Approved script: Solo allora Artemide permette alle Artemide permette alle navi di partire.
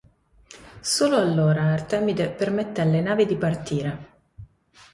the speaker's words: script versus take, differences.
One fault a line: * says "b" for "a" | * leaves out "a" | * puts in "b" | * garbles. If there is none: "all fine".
* leaves out "Artemide permette alle"